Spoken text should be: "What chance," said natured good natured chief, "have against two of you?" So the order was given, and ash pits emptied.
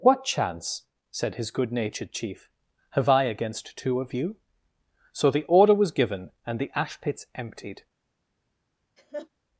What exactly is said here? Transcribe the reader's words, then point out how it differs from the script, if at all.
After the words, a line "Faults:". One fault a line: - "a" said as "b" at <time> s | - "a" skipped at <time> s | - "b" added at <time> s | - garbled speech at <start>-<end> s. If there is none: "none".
"What chance," said his good natured chief, "have I against two of you?" So the order was given, and the ash pits emptied.
Faults:
- "natured" said as "his" at 1.4 s
- "I" added at 3.1 s
- "the" added at 6.6 s